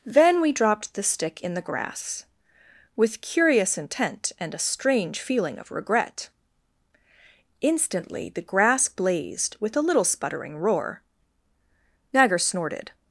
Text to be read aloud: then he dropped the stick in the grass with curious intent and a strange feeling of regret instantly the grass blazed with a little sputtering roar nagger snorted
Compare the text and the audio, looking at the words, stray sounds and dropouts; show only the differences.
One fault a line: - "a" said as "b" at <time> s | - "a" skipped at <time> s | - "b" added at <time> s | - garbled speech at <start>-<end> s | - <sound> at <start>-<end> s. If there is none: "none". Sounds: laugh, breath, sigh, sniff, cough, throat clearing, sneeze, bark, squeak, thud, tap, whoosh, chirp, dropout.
- "he" said as "we" at 0.4 s